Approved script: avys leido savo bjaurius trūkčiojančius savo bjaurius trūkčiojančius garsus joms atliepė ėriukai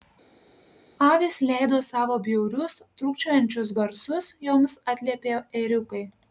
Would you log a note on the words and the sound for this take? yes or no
yes